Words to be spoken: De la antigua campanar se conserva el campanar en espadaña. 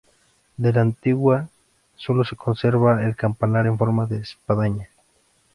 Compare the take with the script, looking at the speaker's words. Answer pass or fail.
fail